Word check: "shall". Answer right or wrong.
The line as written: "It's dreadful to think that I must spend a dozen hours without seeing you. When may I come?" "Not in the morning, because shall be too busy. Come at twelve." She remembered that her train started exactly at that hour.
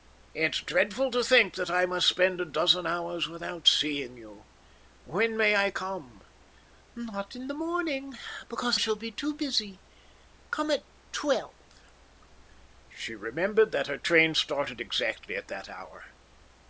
right